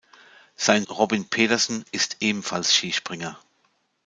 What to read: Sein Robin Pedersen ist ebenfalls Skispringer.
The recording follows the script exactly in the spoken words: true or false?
true